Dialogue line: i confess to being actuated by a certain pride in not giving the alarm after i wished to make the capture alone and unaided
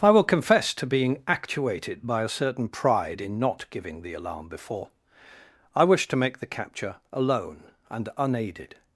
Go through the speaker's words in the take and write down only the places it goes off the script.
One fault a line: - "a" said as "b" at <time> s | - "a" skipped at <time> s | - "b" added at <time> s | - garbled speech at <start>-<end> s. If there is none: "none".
- "will" added at 0.1 s
- "after" said as "before" at 4.5 s